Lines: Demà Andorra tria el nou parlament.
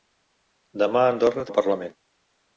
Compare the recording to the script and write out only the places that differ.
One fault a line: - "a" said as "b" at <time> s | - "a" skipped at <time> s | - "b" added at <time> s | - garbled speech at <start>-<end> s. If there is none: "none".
- "tria el" skipped at 1.5 s